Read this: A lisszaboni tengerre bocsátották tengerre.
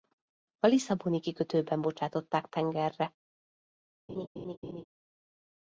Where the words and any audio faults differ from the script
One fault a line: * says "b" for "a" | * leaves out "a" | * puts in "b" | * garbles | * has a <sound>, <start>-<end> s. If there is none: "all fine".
* says "kikötőben" for "tengerre"
* has a laugh, 4.1-4.8 s